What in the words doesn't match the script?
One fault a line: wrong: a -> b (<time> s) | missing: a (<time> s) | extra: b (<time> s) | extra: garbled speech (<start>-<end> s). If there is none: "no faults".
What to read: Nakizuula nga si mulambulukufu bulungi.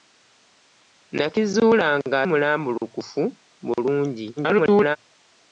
missing: si (2.2 s)
extra: garbled speech (4.4-5.0 s)